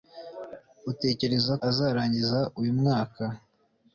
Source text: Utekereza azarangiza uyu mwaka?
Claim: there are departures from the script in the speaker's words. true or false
false